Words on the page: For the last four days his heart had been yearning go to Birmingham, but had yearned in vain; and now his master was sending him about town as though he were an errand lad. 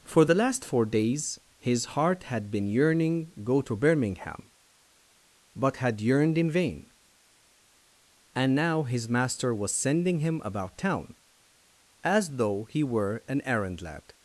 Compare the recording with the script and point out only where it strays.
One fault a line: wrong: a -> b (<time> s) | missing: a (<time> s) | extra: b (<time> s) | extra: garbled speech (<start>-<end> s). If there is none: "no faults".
no faults